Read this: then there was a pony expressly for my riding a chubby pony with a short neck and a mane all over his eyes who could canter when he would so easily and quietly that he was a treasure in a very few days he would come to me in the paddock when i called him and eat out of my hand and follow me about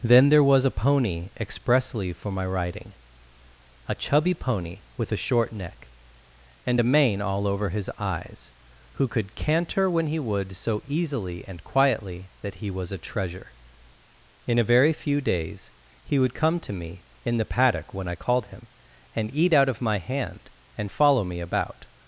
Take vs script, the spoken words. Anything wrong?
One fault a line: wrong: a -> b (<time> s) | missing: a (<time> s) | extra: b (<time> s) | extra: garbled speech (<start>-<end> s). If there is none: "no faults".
no faults